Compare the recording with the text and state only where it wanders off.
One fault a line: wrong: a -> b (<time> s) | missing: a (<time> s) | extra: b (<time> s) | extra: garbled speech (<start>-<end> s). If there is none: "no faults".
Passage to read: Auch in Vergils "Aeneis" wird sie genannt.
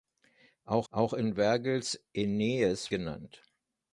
extra: auch (0.9 s)
missing: wird sie (2.9 s)